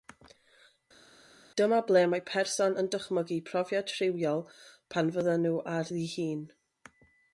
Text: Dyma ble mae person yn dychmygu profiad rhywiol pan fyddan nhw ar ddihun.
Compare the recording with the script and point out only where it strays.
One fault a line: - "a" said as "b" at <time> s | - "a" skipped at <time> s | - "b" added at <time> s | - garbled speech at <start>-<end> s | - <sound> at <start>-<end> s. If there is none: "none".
none